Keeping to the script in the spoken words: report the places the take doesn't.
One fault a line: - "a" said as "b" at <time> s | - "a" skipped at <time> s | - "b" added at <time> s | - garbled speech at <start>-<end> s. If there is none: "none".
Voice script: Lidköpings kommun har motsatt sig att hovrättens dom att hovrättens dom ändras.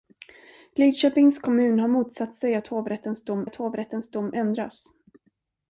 none